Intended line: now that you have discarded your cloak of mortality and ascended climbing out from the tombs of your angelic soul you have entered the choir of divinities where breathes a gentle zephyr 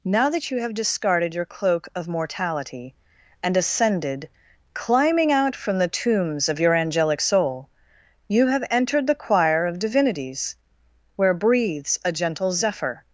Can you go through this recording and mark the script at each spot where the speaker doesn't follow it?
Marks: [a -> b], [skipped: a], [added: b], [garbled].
now that you have discarded your cloak of mortality and ascended climbing out from the tombs of your angelic soul you have entered the choir of divinities where breathes a gentle zephyr